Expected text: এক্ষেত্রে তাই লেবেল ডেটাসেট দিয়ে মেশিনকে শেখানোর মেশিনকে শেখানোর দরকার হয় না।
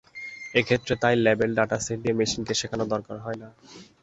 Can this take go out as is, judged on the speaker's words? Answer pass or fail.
fail